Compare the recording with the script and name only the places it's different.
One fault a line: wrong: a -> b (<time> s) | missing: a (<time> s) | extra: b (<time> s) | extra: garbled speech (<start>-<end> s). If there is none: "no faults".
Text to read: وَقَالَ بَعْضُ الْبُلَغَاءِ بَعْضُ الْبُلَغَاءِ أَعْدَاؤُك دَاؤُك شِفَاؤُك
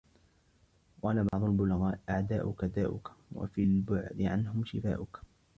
wrong: بَعْضُ الْبُلَغَاءِ أَعْدَاؤُك دَاؤُك -> أَعْدَاؤُك دَاؤُك وَفِي الْبُعْدِ عَنْهُمْ (2.1 s)